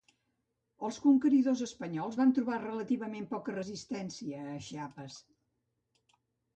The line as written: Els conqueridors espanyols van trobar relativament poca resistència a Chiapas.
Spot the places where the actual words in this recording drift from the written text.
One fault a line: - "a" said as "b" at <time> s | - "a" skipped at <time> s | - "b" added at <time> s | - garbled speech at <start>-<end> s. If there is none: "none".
none